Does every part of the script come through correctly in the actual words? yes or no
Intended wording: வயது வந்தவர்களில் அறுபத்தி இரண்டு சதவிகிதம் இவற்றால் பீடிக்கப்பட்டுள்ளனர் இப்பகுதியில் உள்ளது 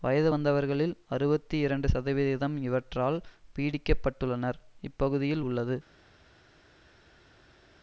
yes